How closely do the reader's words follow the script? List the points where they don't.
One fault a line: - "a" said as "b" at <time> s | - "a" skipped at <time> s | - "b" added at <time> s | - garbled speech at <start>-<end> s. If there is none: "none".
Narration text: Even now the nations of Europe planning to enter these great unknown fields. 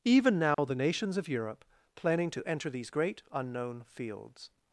none